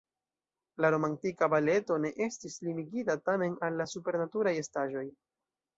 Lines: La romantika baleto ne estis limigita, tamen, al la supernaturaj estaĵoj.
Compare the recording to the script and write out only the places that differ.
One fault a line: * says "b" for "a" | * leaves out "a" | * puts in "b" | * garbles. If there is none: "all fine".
all fine